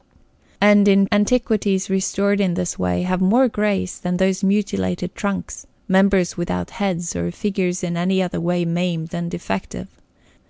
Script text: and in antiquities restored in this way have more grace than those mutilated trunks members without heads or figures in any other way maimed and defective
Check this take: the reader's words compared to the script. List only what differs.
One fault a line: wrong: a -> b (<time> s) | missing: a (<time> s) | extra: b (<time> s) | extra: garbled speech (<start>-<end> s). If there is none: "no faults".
no faults